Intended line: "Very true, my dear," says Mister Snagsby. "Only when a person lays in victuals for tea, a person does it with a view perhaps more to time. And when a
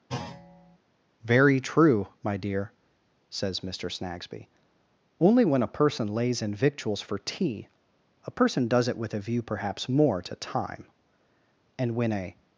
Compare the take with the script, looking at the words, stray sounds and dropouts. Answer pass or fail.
fail